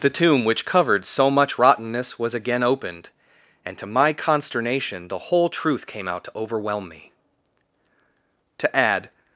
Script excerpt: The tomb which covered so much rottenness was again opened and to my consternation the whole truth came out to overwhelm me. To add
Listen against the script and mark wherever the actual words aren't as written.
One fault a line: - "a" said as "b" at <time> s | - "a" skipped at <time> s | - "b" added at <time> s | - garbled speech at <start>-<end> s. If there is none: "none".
none